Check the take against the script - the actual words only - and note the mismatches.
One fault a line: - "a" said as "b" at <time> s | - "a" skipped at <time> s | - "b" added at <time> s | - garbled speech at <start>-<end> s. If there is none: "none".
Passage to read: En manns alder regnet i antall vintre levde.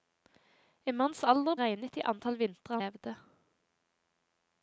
none